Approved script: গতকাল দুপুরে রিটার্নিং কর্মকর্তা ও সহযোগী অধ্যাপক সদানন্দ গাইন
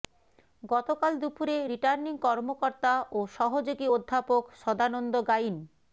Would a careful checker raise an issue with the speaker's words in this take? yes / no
no